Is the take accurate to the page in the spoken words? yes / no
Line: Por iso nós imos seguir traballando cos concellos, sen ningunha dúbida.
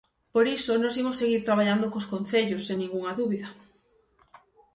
yes